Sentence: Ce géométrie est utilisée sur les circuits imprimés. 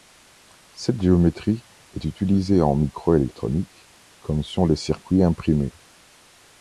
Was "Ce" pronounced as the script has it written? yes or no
no